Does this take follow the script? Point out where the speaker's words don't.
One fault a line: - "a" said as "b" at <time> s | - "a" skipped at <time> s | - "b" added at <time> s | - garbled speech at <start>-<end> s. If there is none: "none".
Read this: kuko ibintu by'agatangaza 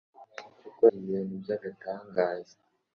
none